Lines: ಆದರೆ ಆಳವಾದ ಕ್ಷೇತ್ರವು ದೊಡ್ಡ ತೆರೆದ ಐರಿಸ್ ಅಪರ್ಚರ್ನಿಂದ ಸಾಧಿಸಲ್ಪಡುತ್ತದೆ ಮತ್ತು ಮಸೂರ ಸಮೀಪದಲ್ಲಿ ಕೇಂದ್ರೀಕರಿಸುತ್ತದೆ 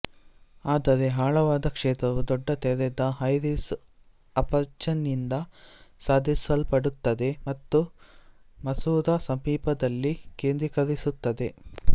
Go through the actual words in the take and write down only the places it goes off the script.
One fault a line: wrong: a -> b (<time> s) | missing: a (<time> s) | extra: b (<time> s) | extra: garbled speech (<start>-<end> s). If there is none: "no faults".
no faults